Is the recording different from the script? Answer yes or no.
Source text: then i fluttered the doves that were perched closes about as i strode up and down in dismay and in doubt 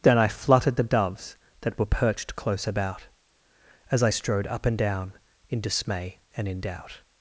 yes